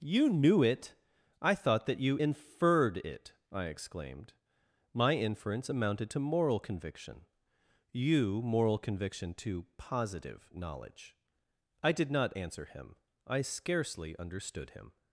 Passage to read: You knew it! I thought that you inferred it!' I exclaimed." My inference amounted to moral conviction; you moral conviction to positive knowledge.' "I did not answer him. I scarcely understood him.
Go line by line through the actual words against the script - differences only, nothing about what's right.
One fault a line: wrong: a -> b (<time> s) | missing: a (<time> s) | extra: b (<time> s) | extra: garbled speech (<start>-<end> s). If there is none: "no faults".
no faults